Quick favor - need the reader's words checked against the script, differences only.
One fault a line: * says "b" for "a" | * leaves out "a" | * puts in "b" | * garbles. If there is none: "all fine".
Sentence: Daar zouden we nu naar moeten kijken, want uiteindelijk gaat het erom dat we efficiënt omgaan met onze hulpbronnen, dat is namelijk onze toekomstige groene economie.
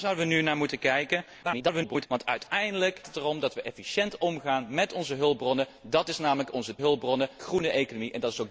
* garbles
* leaves out "gaat"
* says "hulpbronnen" for "toekomstige"